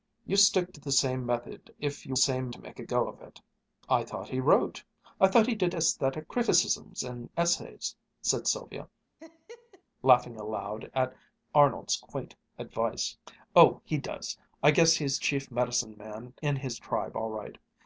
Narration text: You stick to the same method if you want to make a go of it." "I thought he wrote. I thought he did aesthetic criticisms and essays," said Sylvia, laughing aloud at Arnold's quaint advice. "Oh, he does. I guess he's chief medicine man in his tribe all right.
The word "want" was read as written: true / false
false